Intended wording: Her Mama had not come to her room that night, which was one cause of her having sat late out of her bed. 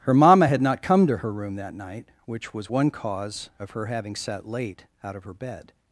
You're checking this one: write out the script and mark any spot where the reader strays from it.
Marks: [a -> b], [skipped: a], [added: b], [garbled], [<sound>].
Her Mama had not come to her room that night, which was one cause of her having sat late out of her bed.